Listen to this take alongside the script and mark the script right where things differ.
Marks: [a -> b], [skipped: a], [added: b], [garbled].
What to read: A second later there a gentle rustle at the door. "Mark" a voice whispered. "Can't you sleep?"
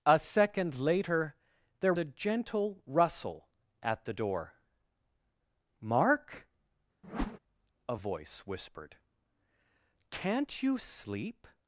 A second later there a gentle rustle at the door. "Mark" a voice whispered. "Can't you sleep?"